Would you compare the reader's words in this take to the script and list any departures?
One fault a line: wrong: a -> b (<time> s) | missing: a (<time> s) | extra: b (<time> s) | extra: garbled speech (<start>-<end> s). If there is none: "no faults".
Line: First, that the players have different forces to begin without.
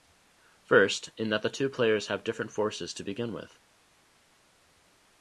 extra: in (1.1 s)
extra: two (1.5 s)
wrong: without -> with (3.3 s)